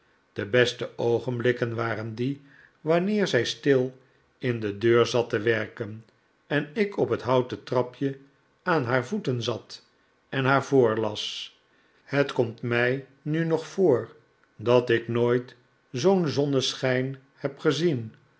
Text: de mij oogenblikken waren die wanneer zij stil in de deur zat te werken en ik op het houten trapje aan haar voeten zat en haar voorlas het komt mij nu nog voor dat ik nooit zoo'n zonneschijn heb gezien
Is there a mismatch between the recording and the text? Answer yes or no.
yes